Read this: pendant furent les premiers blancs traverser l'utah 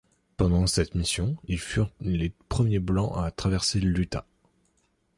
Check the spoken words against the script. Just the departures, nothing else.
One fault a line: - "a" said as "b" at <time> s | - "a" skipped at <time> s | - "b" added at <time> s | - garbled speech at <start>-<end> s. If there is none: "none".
- "cette mission ils" added at 0.7 s
- "à" added at 3.1 s